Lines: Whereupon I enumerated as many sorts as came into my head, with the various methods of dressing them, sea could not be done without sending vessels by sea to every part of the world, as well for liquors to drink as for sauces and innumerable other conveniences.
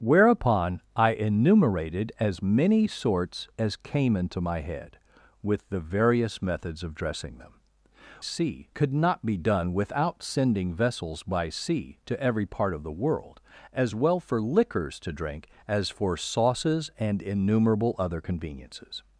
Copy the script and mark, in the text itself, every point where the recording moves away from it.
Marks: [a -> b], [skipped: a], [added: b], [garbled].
Whereupon I enumerated as many sorts as came into my head, with the various methods of dressing them, sea could not be done without sending vessels by sea to every part of the world, as well for liquors to drink as for sauces and innumerable other conveniences.